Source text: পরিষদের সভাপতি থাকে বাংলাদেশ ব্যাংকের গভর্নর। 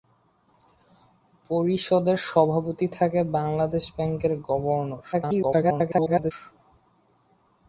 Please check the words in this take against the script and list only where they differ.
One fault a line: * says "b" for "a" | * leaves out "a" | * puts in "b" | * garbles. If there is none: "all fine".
* garbles